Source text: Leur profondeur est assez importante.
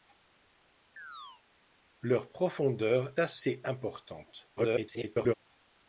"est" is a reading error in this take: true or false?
true